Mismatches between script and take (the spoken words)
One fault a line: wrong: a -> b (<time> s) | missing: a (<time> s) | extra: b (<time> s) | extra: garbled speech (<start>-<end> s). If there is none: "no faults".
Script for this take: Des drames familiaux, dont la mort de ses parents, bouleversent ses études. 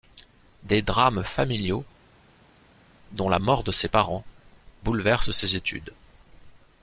no faults